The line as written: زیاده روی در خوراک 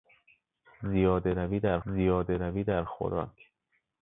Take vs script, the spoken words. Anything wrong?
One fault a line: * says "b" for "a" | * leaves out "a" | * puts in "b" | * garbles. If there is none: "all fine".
* puts in "زیاده روی در"